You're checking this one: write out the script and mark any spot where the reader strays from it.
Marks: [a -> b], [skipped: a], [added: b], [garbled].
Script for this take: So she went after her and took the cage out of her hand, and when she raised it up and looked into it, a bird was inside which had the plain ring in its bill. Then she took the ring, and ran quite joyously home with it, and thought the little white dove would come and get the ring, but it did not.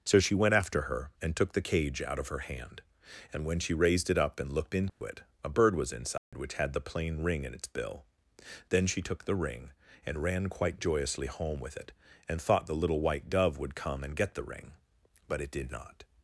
So she went after her and took the cage out of her hand, and when she raised it up and looked into it, a bird was inside which had the plain ring in its bill. Then she took the ring, and ran quite joyously home with it, and thought the little white dove would come and get the ring, but it did not.